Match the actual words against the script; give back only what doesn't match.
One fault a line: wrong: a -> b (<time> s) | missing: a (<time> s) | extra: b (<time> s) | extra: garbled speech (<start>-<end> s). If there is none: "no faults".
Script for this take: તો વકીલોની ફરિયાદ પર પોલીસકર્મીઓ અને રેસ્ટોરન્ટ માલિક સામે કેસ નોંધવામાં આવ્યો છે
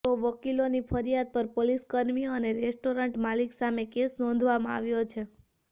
no faults